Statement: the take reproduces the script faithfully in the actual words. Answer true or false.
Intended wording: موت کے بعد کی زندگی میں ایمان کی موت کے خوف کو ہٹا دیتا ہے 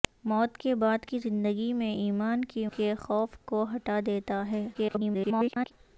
false